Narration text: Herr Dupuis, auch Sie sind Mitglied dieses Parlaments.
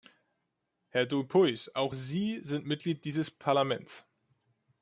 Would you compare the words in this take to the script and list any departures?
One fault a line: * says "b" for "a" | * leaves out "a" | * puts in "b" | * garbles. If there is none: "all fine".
all fine